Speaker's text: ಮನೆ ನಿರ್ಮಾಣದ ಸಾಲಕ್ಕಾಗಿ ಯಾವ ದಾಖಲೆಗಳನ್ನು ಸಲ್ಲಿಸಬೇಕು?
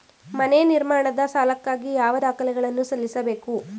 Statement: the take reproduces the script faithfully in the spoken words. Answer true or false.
true